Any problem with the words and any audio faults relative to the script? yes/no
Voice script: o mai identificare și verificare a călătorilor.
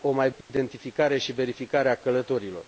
yes